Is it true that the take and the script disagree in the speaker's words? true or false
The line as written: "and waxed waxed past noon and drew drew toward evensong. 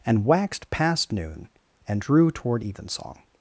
true